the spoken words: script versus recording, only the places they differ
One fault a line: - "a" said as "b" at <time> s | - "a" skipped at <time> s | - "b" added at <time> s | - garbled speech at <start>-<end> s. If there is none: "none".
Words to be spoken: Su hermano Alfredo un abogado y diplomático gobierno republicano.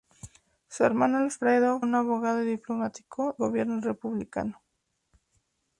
none